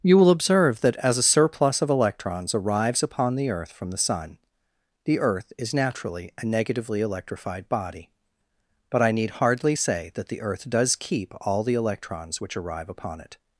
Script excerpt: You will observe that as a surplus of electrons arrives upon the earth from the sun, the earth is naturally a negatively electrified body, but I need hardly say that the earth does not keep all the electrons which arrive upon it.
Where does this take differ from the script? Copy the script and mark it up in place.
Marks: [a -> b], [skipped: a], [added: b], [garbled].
You will observe that as a surplus of electrons arrives upon the earth from the sun, the earth is naturally a negatively electrified body, but I need hardly say that the earth does [skipped: not] keep all the electrons which arrive upon it.